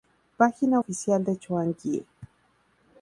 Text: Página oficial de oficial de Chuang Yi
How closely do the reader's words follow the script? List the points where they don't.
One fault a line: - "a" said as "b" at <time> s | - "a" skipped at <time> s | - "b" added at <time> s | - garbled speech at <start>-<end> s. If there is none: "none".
- "oficial de" skipped at 1.4 s